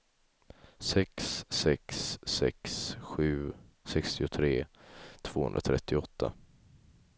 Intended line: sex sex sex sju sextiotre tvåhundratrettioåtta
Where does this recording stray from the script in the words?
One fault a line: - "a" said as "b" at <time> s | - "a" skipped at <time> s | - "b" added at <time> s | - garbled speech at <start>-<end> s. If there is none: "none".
none